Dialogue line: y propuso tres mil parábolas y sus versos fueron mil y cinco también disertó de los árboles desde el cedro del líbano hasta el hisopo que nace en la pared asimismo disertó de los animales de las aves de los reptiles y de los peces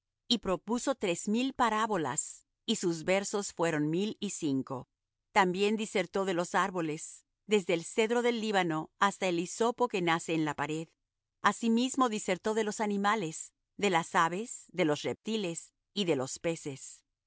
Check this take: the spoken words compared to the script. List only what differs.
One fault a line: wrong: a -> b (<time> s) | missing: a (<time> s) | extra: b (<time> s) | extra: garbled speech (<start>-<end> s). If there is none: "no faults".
no faults